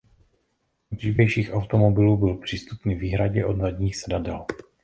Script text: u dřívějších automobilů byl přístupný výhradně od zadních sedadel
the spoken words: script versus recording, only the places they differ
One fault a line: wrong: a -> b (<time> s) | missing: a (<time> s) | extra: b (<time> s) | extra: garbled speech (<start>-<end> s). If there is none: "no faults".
no faults